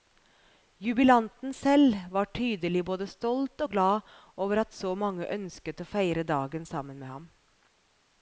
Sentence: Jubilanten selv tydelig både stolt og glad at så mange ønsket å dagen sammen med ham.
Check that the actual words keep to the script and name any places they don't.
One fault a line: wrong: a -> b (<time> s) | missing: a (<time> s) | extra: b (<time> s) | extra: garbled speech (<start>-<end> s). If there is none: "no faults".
extra: var (2.1 s)
extra: over (4.4 s)
extra: feire (5.9 s)